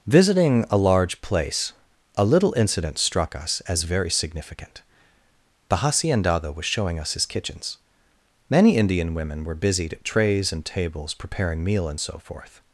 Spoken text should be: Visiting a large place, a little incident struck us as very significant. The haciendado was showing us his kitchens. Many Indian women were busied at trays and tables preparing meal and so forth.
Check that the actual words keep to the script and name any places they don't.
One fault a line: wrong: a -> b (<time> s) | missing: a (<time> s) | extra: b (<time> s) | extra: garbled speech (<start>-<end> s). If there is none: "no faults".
no faults